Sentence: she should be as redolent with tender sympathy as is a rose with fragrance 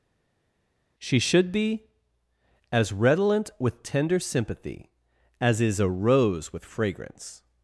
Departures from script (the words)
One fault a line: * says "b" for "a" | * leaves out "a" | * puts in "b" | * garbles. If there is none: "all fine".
all fine